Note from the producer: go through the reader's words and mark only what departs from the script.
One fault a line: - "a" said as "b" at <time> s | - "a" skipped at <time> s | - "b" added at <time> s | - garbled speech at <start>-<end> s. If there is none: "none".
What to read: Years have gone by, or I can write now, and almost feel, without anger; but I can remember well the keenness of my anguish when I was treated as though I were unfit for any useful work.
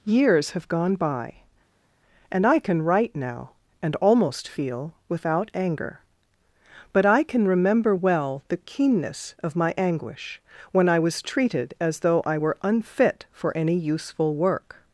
- "or" said as "and" at 2.3 s